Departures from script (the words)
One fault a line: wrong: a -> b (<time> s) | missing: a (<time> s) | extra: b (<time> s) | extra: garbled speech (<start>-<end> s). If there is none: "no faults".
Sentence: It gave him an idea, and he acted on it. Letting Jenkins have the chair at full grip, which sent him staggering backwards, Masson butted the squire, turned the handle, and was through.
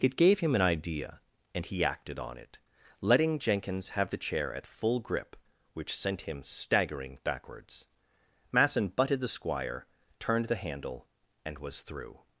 no faults